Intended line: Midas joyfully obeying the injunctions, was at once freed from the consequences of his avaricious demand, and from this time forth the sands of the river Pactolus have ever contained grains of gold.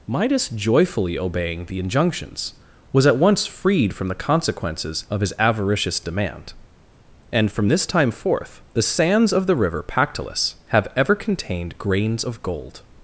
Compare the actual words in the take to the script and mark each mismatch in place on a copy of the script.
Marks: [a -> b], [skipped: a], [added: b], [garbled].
Midas joyfully obeying the injunctions, was at once freed from the consequences of his avaricious demand, and from this time forth the sands of the river Pactolus have ever contained grains of gold.